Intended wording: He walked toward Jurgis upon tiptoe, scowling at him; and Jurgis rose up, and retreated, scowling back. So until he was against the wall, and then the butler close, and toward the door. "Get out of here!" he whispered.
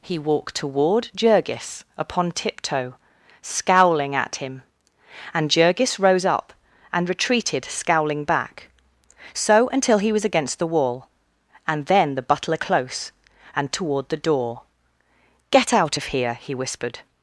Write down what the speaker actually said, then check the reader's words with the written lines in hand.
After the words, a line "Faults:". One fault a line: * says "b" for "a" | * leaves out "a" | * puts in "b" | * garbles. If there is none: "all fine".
He walked toward Jurgis upon tiptoe, scowling at him; and Jurgis rose up, and retreated, scowling back. So until he was against the wall, and then the butler close, and toward the door. "Get out of here!" he whispered.
Faults:
all fine